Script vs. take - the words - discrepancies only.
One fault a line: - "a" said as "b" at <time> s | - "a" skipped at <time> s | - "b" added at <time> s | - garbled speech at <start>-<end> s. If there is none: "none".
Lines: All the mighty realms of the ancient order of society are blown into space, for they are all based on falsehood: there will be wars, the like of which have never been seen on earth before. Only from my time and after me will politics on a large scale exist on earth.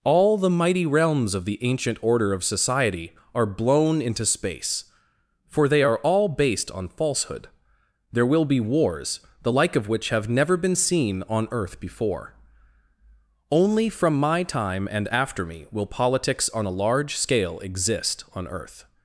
none